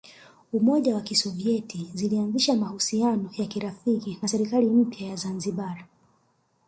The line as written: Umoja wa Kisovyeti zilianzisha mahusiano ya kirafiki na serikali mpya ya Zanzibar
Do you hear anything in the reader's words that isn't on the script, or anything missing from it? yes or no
no